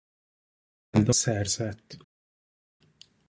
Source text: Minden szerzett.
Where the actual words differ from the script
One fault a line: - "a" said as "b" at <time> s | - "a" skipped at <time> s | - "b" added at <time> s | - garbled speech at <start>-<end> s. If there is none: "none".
none